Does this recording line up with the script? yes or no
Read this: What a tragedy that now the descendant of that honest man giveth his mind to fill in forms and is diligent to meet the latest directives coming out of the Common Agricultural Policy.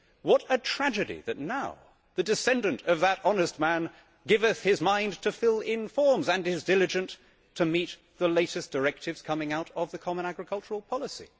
yes